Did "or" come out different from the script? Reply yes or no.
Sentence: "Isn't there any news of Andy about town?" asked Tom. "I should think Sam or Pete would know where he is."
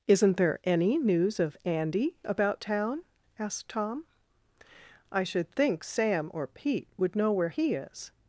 no